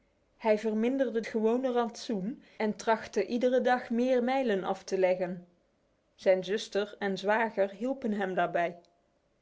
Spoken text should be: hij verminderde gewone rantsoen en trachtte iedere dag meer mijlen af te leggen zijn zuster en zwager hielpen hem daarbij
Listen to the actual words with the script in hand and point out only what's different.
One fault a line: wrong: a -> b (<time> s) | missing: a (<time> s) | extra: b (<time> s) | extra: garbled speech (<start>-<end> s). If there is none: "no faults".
no faults